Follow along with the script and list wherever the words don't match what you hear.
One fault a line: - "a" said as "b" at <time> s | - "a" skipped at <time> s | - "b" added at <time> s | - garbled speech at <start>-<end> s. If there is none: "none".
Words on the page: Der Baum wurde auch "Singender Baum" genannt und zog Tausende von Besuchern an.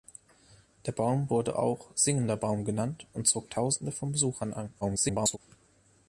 - garbled speech at 4.8-5.4 s